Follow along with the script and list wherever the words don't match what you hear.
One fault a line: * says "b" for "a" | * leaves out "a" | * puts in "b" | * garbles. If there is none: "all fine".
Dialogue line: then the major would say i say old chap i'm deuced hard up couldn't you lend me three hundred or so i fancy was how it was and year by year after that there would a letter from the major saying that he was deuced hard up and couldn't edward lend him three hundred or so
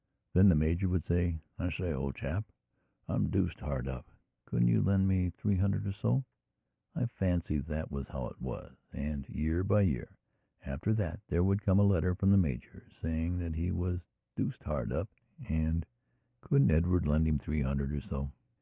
* puts in "that"
* puts in "come"